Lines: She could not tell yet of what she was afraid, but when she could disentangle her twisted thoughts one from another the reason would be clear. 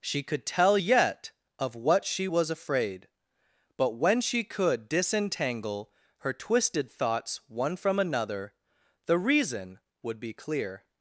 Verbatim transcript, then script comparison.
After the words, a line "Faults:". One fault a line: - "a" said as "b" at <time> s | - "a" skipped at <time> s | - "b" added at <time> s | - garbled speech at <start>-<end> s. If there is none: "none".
She could tell yet of what she was afraid, but when she could disentangle her twisted thoughts one from another the reason would be clear.
Faults:
- "not" skipped at 0.5 s